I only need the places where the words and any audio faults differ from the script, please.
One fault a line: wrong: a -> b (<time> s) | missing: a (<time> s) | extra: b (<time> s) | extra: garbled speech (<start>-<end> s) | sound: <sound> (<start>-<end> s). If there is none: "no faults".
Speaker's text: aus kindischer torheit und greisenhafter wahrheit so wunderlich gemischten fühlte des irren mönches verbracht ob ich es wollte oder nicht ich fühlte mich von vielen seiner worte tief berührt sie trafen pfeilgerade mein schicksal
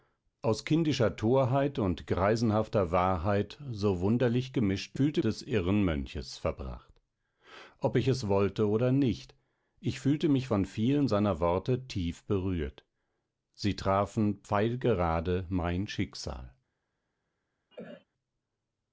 sound: cough (17.7-18.0 s)